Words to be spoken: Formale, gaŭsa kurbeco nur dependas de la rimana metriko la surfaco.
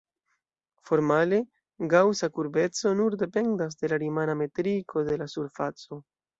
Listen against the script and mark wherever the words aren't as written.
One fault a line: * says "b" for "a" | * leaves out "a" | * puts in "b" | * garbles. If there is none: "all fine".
* puts in "de"